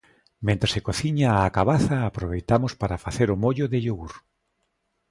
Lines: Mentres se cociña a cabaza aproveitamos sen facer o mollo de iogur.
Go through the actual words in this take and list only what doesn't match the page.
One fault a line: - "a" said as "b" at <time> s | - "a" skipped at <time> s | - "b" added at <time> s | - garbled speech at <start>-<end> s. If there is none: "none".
- "sen" said as "para" at 2.8 s